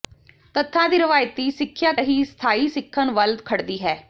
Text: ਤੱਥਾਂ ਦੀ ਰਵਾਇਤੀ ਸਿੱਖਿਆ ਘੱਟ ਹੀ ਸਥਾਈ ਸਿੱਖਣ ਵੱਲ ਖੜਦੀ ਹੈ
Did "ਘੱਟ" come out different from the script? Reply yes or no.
yes